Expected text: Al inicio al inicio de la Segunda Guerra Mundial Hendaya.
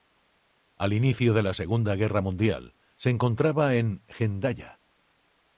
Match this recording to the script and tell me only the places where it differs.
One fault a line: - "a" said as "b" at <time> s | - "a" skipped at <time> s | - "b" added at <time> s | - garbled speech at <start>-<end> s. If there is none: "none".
- "al inicio" skipped at 1.3 s
- "se encontraba en" added at 3.0 s